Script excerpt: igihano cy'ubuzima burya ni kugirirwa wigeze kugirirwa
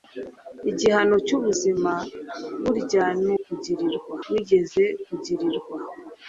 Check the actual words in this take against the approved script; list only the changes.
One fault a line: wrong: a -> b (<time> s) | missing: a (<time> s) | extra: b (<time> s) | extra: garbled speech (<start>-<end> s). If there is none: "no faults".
no faults